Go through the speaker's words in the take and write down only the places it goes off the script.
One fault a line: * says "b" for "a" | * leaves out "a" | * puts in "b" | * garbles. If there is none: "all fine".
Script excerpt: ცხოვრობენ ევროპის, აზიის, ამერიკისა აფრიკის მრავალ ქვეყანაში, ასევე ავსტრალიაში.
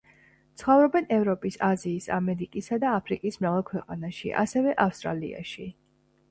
* puts in "და"